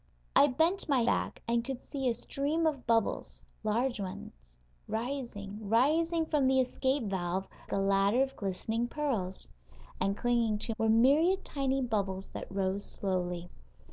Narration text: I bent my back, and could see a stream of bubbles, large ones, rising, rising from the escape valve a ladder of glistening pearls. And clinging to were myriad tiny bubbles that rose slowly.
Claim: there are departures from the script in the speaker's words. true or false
false